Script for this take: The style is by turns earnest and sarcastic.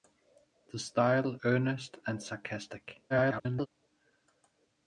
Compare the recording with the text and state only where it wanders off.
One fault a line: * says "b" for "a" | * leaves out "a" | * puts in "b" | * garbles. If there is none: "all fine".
* leaves out "is by turns"
* garbles